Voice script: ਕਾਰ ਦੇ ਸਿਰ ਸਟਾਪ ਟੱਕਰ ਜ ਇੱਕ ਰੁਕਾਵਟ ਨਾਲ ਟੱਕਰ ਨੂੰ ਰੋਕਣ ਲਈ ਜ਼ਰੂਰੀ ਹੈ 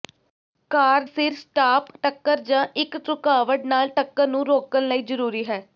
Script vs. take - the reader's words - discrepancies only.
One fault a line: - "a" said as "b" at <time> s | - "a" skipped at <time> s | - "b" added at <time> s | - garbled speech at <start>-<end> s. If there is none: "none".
- "ਦੇ" skipped at 1.0 s